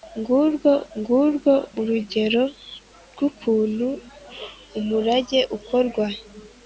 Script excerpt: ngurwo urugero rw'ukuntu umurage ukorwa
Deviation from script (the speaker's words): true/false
true